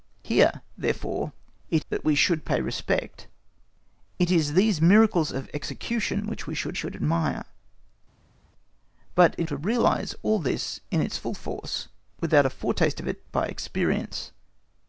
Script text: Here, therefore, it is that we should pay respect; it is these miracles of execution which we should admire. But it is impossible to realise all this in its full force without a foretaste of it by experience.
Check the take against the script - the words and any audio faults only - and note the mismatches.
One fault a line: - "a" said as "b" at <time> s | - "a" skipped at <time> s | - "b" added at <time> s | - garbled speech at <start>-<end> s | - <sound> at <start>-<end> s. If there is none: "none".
- "is" skipped at 1.9 s
- "should" added at 6.7 s
- "is impossible" skipped at 9.5 s